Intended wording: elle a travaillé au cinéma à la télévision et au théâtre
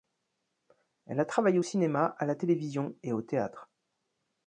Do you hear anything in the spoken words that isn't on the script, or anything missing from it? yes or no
no